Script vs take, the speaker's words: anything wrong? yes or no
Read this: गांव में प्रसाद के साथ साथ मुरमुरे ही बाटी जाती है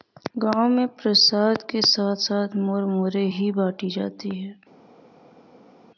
no